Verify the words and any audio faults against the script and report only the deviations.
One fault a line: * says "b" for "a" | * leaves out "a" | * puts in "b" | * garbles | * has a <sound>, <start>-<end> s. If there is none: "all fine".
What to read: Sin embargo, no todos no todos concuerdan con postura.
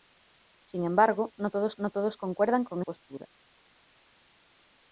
all fine